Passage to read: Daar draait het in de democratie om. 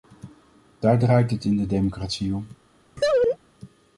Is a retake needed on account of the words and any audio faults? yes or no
yes